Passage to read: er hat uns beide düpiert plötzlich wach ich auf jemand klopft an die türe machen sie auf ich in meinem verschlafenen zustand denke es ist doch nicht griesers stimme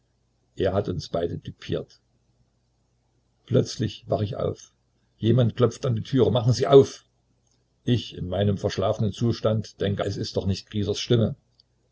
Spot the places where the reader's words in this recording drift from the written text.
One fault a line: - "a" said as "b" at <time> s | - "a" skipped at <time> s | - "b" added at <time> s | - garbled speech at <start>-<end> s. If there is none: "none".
none